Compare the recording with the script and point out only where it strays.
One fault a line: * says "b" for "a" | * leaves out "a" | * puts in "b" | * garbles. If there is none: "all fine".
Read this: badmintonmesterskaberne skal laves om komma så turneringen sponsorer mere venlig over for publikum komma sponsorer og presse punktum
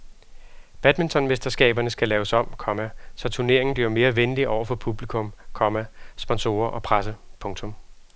* says "bliver" for "sponsorer"